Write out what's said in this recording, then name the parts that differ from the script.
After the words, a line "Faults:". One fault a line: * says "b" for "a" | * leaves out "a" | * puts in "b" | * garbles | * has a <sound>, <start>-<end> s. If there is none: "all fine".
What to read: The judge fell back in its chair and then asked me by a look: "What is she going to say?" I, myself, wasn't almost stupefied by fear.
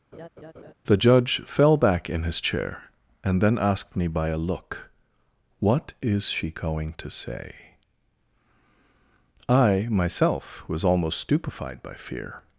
The judge fell back in his chair and then asked me by a look: "What is she going to say?" I, myself, was almost stupefied by fear.
Faults:
* has a laugh, 0.1-0.7 s
* says "his" for "its"
* says "was" for "wasn't"